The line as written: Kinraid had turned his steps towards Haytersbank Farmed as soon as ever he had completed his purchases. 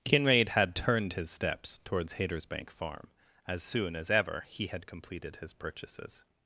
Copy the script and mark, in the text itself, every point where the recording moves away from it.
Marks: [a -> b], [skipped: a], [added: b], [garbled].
Kinraid had turned his steps towards Haytersbank [Farmed -> Farm] as soon as ever he had completed his purchases.